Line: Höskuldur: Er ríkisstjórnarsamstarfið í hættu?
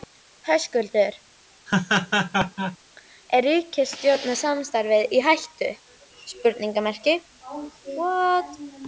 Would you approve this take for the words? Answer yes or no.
yes